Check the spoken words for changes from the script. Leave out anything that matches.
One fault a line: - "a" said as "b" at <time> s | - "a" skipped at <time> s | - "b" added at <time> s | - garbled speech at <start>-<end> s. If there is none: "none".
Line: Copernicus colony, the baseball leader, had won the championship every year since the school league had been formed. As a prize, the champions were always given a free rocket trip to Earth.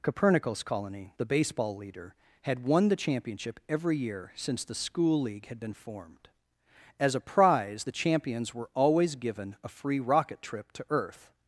none